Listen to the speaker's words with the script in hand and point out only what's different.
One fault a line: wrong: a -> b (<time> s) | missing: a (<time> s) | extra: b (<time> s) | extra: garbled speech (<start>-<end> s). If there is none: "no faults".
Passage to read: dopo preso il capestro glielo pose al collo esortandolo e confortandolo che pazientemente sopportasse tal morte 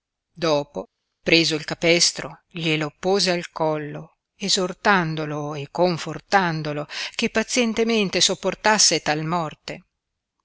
no faults